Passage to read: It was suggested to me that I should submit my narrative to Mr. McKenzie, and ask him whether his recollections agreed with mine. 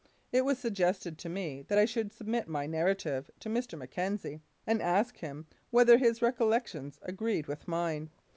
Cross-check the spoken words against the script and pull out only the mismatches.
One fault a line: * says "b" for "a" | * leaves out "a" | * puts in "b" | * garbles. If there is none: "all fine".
all fine